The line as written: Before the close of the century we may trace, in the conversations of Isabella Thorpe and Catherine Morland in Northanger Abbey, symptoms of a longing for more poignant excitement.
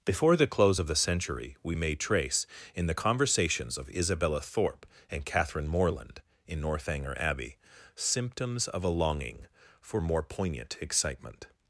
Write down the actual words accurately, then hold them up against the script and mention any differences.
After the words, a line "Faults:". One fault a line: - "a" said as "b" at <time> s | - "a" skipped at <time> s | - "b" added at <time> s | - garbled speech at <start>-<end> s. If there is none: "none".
Before the close of the century we may trace, in the conversations of Isabella Thorpe and Catherine Morland in Northanger Abbey, symptoms of a longing for more poignant excitement.
Faults:
none